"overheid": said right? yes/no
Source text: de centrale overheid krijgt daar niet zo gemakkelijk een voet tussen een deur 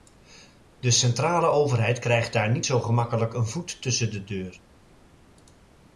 yes